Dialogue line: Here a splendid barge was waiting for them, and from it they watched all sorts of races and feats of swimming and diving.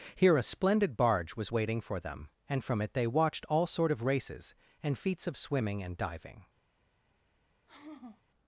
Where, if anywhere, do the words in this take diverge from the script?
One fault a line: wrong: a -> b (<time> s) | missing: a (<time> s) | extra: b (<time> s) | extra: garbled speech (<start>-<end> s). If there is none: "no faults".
wrong: sorts -> sort (3.7 s)